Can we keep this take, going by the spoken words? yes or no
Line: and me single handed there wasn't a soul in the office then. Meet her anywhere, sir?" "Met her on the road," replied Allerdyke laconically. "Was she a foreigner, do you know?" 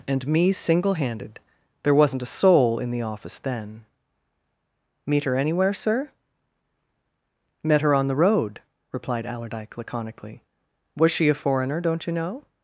no